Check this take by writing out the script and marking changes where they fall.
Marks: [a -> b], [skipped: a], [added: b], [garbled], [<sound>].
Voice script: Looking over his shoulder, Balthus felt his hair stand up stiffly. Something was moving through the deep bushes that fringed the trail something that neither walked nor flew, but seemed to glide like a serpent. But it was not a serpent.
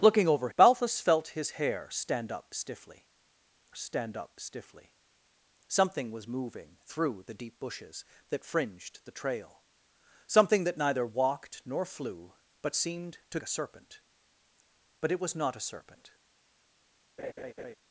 Looking over [skipped: his shoulder,] Balthus felt his hair stand up stiffly. [added: stand up stiffly] Something was moving through the deep bushes that fringed the trail something that neither walked nor flew, but seemed to [skipped: glide like] a serpent. But it was not a serpent. [laugh]